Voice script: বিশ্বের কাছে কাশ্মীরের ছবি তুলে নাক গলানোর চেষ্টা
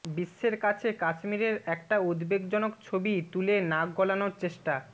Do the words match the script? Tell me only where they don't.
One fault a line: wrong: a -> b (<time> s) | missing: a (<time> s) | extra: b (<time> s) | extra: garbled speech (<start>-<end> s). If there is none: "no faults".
extra: একটা উদ্বেগজনক (1.7 s)